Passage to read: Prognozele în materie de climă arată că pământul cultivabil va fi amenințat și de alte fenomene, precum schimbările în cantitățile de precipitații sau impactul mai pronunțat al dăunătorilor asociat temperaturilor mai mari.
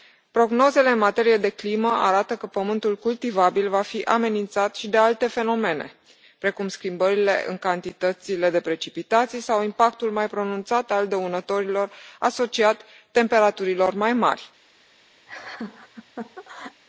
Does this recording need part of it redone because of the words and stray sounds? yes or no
yes